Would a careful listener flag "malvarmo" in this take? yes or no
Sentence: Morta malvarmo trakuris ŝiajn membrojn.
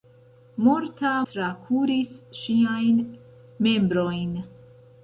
yes